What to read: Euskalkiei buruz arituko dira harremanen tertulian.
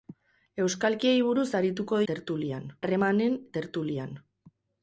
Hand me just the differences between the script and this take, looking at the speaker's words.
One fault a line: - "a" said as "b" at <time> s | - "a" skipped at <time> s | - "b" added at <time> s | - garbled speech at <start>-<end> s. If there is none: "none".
- "dira" said as "tertulian" at 2.1 s